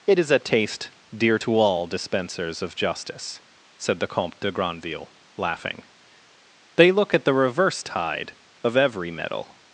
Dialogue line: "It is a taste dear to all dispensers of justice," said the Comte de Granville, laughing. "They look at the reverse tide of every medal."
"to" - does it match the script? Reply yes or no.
yes